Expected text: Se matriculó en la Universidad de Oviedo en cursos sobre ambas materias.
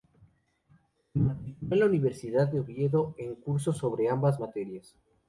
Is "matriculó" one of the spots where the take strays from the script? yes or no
no